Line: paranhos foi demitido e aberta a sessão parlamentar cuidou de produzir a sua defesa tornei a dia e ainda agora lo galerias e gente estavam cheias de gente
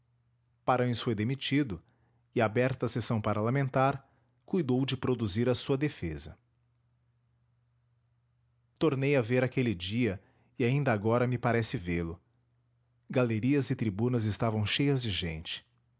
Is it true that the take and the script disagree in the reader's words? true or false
true